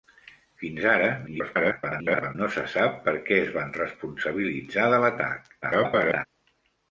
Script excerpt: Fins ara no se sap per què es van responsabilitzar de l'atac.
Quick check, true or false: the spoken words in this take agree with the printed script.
false